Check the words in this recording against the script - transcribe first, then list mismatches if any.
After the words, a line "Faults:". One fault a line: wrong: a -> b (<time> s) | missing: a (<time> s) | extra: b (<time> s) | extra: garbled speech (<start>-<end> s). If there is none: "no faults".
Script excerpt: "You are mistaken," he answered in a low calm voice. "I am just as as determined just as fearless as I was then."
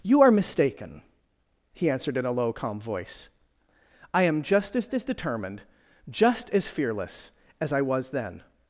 "You are mistaken," he answered in a low calm voice. "I am just as as determined just as fearless as I was then."
Faults:
no faults